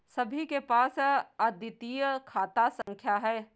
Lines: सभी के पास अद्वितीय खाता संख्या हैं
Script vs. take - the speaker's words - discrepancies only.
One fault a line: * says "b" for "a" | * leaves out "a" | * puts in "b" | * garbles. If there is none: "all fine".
all fine